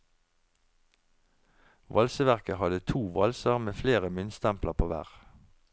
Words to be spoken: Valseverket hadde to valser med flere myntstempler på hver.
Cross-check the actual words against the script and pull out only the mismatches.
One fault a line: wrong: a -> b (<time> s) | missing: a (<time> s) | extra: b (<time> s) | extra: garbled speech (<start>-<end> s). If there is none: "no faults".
no faults